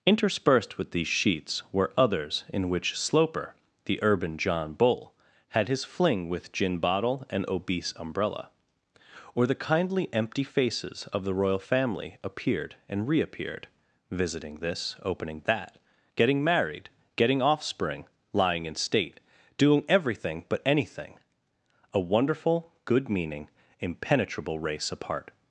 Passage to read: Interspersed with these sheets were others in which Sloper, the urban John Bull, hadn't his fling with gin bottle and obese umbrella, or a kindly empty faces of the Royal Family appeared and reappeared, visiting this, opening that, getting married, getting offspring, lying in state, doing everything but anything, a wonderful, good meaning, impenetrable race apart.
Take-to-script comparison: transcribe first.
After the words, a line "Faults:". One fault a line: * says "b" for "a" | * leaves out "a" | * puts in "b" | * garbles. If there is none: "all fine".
Interspersed with these sheets were others in which Sloper, the urban John Bull, had his fling with gin bottle and obese umbrella, or the kindly empty faces of the Royal Family appeared and reappeared, visiting this, opening that, getting married, getting offspring, lying in state, doing everything but anything, a wonderful, good meaning, impenetrable race apart.
Faults:
* says "had" for "hadn't"
* says "the" for "a"